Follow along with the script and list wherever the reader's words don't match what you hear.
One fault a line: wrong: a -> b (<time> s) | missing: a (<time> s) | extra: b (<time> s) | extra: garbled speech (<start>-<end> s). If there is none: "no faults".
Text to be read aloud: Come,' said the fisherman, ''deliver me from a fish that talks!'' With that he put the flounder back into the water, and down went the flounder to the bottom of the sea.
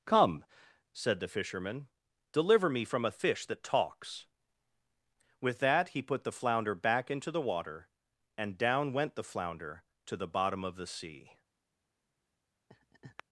no faults